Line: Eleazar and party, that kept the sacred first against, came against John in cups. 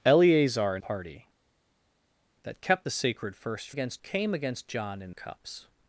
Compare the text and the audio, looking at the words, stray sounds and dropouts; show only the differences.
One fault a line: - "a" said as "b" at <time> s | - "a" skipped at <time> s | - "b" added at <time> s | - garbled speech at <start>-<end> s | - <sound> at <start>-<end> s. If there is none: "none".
none